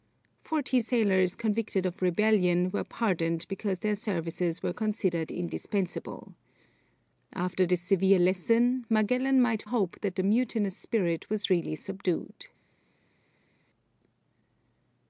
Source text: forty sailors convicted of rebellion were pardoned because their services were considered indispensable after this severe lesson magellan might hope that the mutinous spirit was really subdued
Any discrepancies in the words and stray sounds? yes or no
no